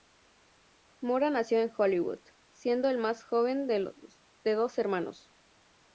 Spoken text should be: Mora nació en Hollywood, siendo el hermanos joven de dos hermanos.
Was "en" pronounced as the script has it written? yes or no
yes